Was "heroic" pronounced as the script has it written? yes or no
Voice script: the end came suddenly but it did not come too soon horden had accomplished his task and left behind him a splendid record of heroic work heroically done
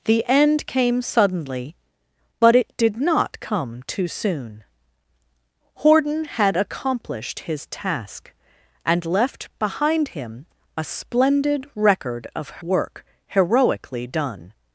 no